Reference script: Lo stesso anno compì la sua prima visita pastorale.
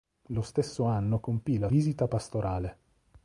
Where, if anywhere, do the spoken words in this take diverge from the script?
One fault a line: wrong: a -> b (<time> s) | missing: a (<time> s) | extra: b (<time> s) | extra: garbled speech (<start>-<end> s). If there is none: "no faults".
missing: sua prima (1.7 s)